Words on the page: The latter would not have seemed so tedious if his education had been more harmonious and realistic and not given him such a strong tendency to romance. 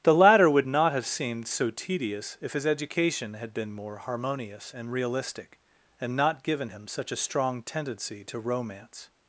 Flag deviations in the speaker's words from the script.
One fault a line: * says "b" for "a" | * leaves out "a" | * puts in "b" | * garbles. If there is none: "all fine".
all fine